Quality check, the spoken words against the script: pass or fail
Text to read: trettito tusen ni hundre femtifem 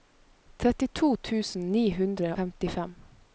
pass